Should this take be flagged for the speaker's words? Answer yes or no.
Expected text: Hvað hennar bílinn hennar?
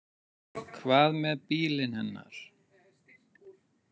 yes